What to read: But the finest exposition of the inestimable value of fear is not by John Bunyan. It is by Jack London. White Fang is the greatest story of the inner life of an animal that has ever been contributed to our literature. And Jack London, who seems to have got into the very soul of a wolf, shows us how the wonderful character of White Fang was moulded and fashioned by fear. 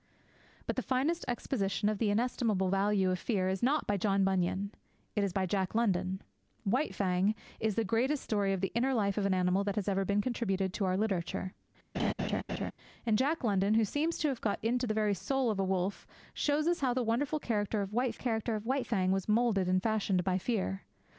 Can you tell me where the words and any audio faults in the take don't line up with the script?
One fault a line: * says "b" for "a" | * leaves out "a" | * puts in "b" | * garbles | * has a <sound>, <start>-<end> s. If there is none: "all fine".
* has a laugh, 11.9-12.7 s
* puts in "character of White"